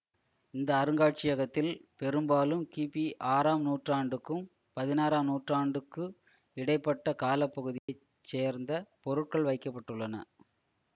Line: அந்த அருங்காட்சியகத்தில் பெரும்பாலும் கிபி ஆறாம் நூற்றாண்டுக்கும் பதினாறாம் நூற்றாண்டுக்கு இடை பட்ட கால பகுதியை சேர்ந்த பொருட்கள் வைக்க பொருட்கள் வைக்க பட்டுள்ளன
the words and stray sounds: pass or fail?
fail